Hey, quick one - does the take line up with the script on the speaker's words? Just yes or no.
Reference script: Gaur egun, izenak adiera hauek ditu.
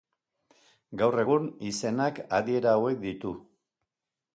yes